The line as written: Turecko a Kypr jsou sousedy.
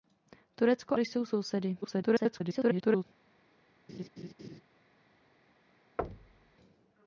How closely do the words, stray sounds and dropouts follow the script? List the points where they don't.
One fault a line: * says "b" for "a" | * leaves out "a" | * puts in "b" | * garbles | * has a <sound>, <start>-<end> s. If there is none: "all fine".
* leaves out "a Kypr"
* garbles
* has a laugh, 3.9-4.6 s
* has a thud, 6.0-6.6 s